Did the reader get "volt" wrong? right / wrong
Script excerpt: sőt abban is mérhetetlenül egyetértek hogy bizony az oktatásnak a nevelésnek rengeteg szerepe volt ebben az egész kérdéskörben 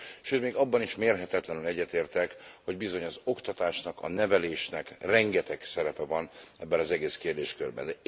wrong